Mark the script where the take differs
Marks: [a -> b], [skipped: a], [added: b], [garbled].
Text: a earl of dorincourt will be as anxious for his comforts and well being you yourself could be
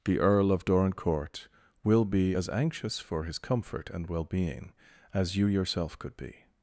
[a -> the] earl of dorincourt will be as anxious for his [comforts -> comfort] and well being [added: as] you yourself could be